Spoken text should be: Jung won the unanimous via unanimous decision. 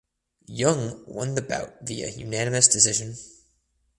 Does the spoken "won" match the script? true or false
true